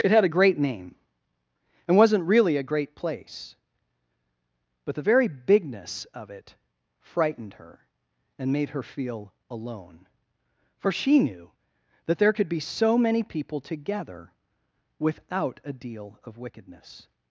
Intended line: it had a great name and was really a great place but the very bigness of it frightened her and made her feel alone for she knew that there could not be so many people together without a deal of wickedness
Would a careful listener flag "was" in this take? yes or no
yes